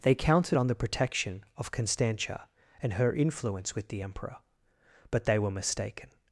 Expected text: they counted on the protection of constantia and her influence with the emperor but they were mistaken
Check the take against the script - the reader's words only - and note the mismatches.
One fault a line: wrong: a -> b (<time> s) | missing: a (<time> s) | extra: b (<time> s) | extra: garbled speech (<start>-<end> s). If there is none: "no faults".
no faults